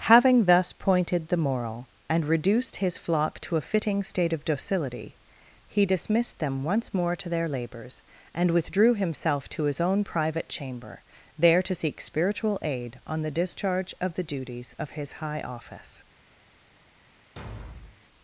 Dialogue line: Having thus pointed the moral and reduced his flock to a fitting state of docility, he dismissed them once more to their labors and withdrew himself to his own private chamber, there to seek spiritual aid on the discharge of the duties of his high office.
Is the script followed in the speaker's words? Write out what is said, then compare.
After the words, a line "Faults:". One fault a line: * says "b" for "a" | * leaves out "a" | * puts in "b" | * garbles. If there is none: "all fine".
Having thus pointed the moral and reduced his flock to a fitting state of docility, he dismissed them once more to their labors and withdrew himself to his own private chamber, there to seek spiritual aid on the discharge of the duties of his high office.
Faults:
all fine